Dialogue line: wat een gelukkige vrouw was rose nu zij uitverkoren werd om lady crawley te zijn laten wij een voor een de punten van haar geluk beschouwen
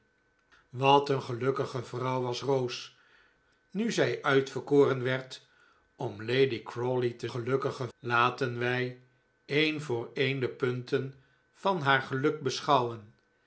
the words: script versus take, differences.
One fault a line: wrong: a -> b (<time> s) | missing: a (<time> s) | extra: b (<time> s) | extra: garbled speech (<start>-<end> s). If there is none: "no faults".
wrong: zijn -> gelukkige (7.3 s)